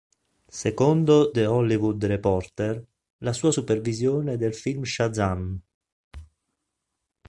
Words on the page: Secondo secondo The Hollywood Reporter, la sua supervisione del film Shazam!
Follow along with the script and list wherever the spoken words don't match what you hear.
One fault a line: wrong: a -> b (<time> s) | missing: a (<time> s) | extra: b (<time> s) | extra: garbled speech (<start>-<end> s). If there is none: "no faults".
missing: secondo (1.3 s)